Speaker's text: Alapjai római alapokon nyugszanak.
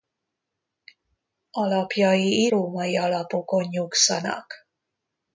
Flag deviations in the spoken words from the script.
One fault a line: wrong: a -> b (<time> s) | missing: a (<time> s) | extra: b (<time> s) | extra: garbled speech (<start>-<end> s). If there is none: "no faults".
no faults